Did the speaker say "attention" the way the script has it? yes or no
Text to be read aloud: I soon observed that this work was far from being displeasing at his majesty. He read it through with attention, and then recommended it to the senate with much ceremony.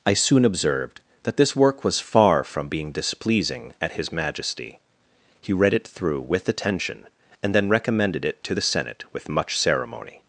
yes